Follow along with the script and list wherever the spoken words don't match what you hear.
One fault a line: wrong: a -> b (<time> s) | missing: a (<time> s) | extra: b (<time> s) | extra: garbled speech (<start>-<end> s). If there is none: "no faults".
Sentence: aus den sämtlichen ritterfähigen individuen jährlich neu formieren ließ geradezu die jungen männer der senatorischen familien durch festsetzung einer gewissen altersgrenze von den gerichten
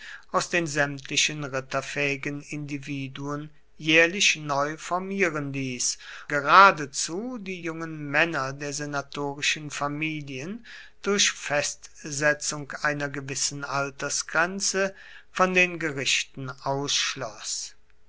no faults